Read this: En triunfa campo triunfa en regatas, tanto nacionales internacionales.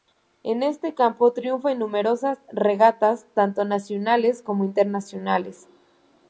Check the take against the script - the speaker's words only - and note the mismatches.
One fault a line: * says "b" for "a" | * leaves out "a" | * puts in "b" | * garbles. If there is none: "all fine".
* says "este" for "triunfa"
* puts in "numerosas"
* puts in "como"